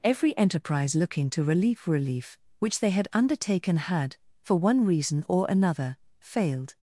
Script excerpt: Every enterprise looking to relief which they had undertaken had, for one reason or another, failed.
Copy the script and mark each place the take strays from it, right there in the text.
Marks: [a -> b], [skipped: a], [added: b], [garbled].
Every enterprise looking to [added: relieve] relief which they had undertaken had, for one reason or another, failed.